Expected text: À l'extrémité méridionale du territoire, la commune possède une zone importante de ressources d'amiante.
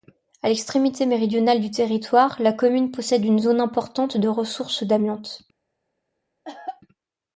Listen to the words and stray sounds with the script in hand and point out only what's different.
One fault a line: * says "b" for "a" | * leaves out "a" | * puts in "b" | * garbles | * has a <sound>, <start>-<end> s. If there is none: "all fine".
* has a cough, 6.4-6.8 s